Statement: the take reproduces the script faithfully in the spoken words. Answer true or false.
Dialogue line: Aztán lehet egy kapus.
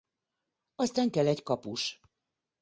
false